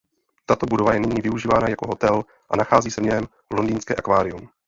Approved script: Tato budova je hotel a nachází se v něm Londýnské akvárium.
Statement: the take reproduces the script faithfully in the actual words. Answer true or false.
false